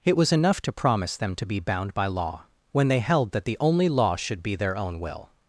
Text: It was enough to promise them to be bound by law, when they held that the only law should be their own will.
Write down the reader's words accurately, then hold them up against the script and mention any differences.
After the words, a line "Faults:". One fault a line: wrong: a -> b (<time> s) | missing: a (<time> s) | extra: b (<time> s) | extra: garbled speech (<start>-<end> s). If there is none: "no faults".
It was enough to promise them to be bound by law, when they held that the only law should be their own will.
Faults:
no faults